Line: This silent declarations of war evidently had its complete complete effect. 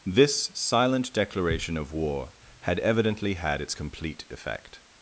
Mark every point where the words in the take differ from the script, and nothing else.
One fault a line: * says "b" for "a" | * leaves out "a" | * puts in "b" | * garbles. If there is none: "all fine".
* says "declaration" for "declarations"
* puts in "had"
* leaves out "complete"